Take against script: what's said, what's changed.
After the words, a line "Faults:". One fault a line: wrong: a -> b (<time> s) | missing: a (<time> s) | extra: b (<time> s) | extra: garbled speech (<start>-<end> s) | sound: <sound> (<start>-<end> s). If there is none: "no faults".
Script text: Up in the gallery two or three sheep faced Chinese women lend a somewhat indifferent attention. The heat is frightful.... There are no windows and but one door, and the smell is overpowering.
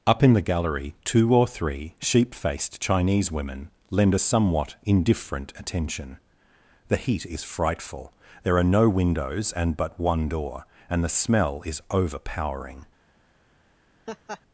Up in the gallery two or three sheep faced Chinese women lend a somewhat indifferent attention. The heat is frightful.... There are no windows and but one door, and the smell is overpowering.
Faults:
sound: laugh (14.1-14.4 s)